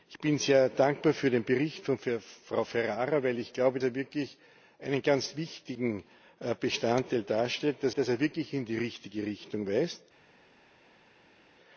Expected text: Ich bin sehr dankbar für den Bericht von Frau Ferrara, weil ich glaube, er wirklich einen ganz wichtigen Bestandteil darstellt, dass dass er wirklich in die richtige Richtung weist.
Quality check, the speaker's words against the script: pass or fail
pass